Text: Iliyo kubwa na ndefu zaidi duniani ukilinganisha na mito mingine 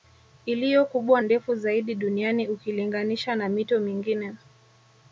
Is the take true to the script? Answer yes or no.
no